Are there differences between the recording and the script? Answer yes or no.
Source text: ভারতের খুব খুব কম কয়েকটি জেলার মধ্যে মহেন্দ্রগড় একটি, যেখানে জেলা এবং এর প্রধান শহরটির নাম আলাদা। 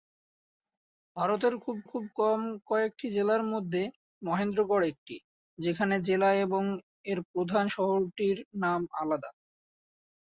no